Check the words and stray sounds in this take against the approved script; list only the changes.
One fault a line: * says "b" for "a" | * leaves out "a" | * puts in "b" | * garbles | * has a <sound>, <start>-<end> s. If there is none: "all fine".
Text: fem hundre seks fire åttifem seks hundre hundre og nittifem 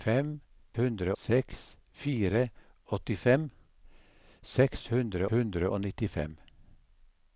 all fine